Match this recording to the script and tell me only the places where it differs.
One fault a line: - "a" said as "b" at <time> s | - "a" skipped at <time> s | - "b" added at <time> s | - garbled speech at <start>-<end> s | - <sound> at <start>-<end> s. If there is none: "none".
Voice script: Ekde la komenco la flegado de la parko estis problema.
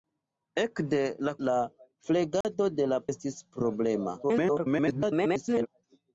- "komenco" skipped at 1.3 s
- dropout at 2.4-2.4 s
- "parko" skipped at 3.0 s
- garbled speech at 4.2-5.7 s